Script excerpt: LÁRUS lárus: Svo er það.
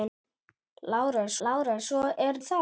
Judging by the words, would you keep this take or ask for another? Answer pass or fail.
pass